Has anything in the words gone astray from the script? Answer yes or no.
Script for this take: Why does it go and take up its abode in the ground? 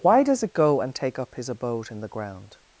yes